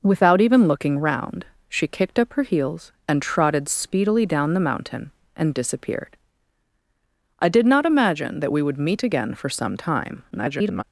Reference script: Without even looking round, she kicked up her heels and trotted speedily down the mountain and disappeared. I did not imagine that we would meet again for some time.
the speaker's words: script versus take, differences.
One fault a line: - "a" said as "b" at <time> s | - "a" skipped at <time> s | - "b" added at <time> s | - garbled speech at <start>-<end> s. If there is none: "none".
- garbled speech at 10.3-10.8 s